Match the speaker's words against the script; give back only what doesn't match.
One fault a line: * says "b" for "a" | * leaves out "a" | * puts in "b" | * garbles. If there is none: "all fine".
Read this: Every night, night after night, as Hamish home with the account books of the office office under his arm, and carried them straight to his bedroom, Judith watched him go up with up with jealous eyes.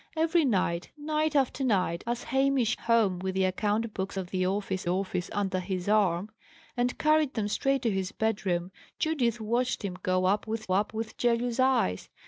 all fine